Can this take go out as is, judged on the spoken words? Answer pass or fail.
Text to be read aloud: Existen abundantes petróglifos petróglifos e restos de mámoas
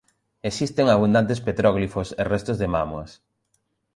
fail